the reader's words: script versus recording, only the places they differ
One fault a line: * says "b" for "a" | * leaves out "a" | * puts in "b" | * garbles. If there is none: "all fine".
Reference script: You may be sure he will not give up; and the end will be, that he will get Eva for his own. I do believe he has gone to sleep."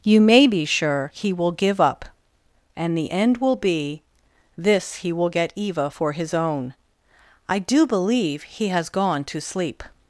* leaves out "not"
* says "this" for "that"